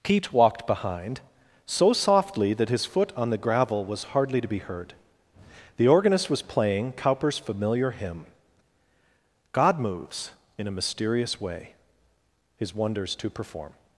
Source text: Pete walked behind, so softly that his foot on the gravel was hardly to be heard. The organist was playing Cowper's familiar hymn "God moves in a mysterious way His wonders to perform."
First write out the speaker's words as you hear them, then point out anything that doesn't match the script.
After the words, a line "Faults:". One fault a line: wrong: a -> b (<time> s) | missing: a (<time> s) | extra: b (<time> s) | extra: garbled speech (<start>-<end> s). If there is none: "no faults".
Pete walked behind, so softly that his foot on the gravel was hardly to be heard. The organist was playing Cowper's familiar hymn "God moves in a mysterious way His wonders to perform."
Faults:
no faults